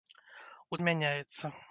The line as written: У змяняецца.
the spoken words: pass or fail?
pass